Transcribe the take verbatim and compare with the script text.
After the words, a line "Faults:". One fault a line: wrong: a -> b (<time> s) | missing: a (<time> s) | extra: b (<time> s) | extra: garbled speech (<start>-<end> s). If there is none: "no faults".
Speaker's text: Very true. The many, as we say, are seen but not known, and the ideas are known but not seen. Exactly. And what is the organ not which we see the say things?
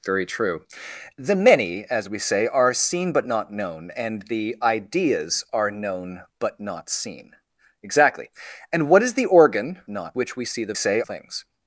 Very true. The many, as we say, are seen but not known, and the ideas are known but not seen. Exactly. And what is the organ not which we see the say things?
Faults:
no faults